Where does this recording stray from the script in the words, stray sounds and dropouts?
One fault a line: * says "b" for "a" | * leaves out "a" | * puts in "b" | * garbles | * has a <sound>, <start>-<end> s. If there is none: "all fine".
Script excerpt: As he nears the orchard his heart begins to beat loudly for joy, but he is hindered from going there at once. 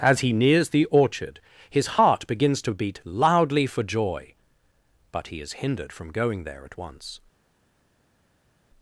all fine